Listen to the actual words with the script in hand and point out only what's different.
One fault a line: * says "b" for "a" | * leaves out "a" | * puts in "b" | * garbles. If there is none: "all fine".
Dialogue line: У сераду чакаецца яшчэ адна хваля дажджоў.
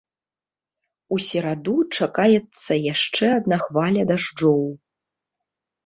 all fine